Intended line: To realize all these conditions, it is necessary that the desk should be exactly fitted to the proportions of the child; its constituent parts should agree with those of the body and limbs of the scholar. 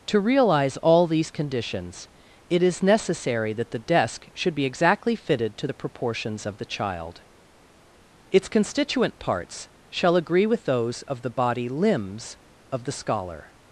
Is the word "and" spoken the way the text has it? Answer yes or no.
no